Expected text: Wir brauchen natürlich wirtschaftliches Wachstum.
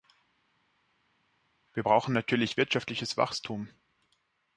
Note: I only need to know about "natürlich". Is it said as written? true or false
true